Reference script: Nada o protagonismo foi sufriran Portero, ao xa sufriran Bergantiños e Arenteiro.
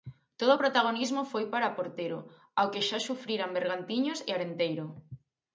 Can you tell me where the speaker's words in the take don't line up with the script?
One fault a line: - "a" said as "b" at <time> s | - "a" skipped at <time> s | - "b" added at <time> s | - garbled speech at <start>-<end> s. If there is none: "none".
- "Nada" said as "Todo" at 0.4 s
- "sufriran" said as "para" at 1.5 s
- "que" added at 2.7 s